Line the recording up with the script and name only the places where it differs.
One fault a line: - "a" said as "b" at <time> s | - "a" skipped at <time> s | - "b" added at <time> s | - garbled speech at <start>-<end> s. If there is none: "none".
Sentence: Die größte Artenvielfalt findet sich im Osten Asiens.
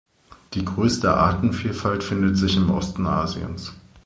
none